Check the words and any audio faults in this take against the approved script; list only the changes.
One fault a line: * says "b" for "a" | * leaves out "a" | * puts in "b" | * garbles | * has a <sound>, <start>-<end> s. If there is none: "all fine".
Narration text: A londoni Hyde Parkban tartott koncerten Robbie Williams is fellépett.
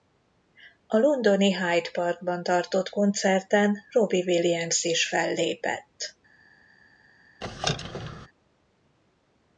* has a squeak, 7.4-8.3 s